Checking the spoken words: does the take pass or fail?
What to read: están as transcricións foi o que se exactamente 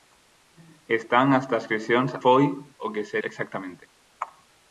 pass